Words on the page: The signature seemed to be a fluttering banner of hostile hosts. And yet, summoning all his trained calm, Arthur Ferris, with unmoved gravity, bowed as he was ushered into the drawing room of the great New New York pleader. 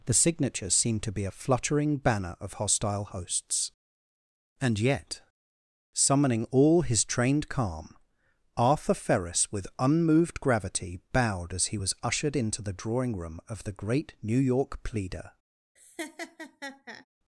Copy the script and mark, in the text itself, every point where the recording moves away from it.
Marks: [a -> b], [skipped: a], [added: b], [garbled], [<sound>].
The signature seemed to be a fluttering banner of hostile hosts. And yet, summoning all his trained calm, Arthur Ferris, with unmoved gravity, bowed as he was ushered into the drawing room of the great New [skipped: New] York pleader. [laugh]